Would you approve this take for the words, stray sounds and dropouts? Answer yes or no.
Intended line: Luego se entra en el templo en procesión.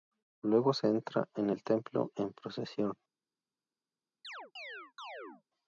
no